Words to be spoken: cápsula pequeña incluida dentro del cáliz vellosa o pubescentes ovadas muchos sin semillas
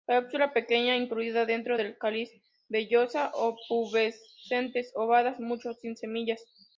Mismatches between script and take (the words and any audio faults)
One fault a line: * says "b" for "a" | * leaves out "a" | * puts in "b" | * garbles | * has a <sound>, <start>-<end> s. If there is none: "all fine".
all fine